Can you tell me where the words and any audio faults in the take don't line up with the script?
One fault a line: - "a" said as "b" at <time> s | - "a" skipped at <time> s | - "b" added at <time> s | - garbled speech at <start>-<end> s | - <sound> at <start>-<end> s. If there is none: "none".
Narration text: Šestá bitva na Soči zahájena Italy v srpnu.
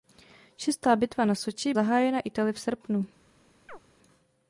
- chirp at 3.7-3.8 s